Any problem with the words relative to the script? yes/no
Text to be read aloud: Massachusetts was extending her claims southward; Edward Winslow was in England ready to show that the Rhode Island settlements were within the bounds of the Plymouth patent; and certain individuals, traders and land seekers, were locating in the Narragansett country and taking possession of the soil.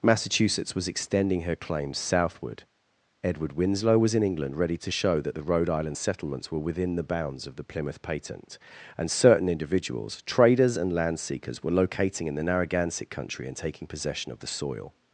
no